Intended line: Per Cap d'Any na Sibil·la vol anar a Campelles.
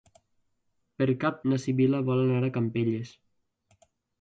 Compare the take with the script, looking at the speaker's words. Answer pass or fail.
fail